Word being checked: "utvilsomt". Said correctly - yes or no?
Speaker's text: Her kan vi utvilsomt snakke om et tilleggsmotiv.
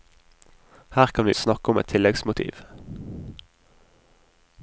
no